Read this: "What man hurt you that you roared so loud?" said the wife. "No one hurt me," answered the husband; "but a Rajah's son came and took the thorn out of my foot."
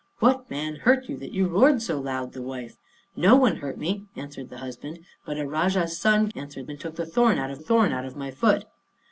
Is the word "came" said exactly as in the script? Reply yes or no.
no